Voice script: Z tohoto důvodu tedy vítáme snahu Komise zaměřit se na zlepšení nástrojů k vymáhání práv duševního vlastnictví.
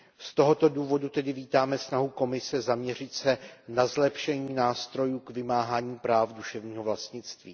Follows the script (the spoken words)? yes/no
yes